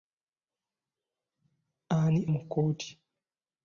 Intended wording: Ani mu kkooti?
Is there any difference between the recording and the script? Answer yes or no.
no